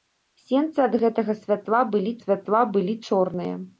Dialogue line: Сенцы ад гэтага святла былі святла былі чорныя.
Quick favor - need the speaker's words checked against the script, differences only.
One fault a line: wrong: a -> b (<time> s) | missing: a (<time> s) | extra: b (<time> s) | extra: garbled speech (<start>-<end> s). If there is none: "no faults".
no faults